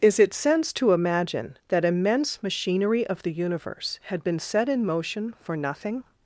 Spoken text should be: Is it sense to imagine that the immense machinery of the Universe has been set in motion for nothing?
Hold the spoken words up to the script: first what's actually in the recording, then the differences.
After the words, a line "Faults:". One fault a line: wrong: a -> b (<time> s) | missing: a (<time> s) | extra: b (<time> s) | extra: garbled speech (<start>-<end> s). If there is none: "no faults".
Is it sense to imagine that immense machinery of the Universe had been set in motion for nothing?
Faults:
missing: the (1.9 s)
wrong: has -> had (4.0 s)